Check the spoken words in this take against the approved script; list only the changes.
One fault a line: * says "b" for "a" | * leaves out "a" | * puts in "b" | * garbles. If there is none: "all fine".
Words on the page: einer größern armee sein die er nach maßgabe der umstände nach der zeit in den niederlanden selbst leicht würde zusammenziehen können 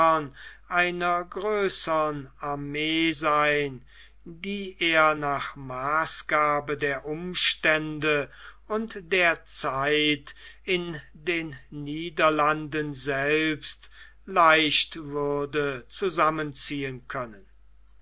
* says "und" for "nach"